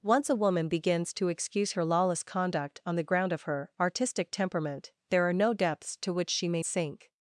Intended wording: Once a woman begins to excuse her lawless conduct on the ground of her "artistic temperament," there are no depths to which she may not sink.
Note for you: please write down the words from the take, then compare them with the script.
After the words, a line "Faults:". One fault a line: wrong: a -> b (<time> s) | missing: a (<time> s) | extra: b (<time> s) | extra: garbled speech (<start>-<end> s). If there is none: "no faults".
Once a woman begins to excuse her lawless conduct on the ground of her "artistic temperament," there are no depths to which she may sink.
Faults:
missing: not (6.6 s)